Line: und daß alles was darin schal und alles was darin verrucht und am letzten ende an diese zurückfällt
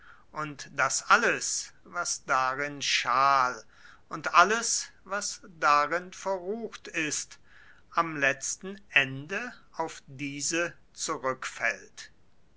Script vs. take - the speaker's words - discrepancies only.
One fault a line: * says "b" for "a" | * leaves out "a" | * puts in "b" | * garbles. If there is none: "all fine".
* says "ist" for "und"
* says "auf" for "an"